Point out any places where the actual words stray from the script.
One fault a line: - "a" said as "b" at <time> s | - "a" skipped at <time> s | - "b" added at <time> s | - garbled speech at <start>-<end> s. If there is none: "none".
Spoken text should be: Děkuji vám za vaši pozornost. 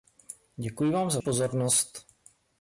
- "vaši" skipped at 1.2 s